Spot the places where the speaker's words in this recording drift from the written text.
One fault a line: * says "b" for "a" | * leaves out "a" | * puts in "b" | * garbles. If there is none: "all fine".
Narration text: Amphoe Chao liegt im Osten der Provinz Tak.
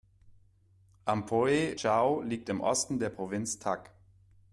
all fine